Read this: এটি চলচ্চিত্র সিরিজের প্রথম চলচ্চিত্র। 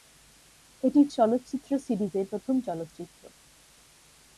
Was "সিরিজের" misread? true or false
false